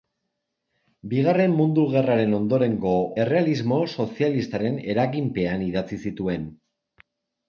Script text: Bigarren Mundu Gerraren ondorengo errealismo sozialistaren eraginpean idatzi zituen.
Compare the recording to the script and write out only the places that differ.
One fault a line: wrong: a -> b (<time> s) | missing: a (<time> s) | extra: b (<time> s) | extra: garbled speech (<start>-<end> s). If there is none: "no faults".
no faults